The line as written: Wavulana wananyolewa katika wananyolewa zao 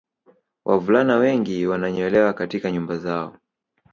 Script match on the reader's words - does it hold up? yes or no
no